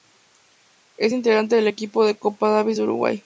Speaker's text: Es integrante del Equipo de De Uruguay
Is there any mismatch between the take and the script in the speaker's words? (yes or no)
yes